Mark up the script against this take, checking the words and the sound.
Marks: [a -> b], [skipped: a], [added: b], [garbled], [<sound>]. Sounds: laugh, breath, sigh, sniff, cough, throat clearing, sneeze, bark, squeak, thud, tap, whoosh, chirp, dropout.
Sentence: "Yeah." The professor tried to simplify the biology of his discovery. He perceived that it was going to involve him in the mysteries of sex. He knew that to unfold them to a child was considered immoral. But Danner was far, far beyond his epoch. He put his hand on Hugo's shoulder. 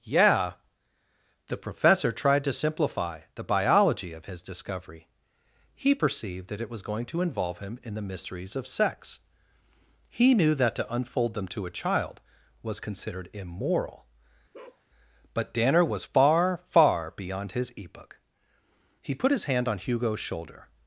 "Yeah." The professor tried to simplify the biology of his discovery. He perceived that it was going to involve him in the mysteries of sex. He knew that to unfold them to a child was considered immoral. [bark] But Danner was far, far beyond his epoch. He put his hand on Hugo's shoulder.